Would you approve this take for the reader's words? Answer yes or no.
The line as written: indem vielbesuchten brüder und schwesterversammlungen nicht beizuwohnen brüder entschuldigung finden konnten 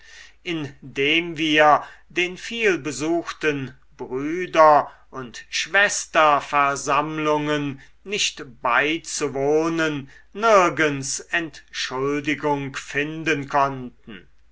no